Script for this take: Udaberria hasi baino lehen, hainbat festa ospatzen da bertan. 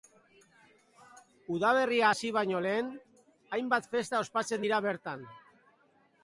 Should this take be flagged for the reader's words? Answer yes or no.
yes